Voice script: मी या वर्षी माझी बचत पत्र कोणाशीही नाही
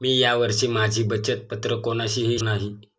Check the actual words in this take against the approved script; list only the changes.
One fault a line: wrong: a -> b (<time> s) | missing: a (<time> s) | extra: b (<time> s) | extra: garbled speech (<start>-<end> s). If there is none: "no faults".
no faults